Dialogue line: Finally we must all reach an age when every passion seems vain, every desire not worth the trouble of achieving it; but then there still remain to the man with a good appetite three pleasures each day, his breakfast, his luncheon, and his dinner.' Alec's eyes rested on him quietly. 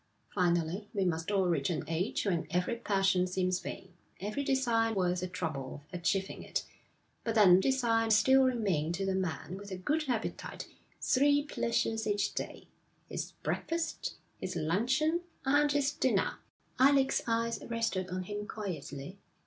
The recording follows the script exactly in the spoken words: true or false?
false